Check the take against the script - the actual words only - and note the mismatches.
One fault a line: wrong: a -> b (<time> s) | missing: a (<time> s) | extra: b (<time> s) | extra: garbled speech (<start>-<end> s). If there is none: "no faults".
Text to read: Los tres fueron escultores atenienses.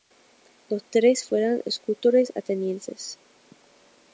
no faults